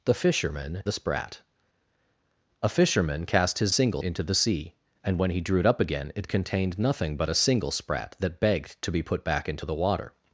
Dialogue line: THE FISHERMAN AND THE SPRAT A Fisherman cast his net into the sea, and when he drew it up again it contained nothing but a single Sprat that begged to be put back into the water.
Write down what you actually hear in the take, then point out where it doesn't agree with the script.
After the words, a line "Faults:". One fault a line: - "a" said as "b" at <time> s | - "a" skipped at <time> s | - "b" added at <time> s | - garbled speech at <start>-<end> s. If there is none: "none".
THE FISHERMAN THE SPRAT A Fisherman cast his single into the sea, and when he drew it up again it contained nothing but a single Sprat that begged to be put back into the water.
Faults:
- "AND" skipped at 0.8 s
- "net" said as "single" at 3.7 s